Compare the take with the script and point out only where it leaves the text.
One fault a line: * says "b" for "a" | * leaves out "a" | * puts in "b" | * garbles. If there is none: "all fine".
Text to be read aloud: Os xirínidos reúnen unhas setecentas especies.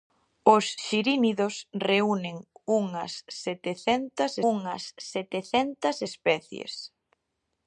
* puts in "unhas setecentas"